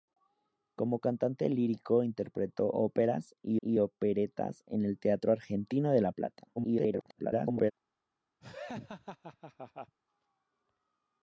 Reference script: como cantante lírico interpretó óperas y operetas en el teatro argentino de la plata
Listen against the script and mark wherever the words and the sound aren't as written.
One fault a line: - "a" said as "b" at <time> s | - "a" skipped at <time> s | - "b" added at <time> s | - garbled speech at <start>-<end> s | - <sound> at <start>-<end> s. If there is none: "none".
- "y" added at 3.6 s
- garbled speech at 6.6-7.7 s
- laugh at 8.4-10.0 s